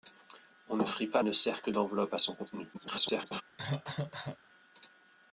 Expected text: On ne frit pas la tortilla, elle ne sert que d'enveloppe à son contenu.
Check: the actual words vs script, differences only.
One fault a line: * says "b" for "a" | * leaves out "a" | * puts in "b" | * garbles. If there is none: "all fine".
* leaves out "la tortilla elle"
* garbles